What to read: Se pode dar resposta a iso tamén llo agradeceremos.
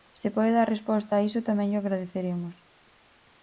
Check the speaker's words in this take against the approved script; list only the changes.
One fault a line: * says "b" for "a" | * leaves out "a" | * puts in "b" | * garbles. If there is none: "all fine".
all fine